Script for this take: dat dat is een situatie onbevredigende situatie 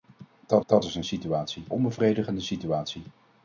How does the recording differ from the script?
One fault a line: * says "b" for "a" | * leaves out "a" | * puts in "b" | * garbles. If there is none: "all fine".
all fine